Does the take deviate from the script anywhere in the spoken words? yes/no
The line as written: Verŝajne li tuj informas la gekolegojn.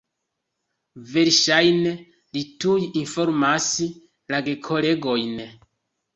no